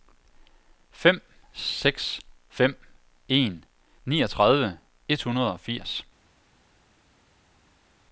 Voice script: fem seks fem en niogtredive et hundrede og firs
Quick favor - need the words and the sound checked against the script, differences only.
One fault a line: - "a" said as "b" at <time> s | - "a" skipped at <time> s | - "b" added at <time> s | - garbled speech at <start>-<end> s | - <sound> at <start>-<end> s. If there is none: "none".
none